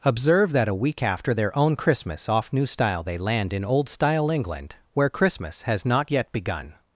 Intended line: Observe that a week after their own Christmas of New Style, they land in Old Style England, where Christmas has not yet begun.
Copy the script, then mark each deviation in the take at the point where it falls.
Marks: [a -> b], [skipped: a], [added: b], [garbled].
Observe that a week after their own Christmas [of -> off] New Style, they land in Old Style England, where Christmas has not yet begun.